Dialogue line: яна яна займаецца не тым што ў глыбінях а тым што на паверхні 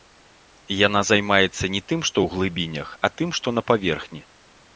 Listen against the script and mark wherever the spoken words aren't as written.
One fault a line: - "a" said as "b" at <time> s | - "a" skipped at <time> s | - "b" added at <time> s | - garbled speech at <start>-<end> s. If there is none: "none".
- "яна" skipped at 1.0 s